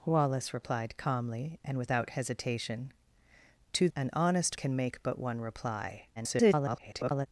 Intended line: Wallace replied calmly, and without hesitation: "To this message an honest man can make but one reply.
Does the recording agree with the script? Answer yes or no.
no